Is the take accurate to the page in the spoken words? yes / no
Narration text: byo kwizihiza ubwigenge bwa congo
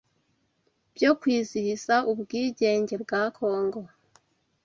yes